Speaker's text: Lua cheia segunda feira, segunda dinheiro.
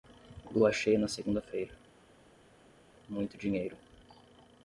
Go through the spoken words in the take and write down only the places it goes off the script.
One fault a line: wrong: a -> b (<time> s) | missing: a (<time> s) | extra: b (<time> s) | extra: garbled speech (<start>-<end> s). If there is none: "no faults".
extra: na (1.0 s)
wrong: segunda -> muito (3.1 s)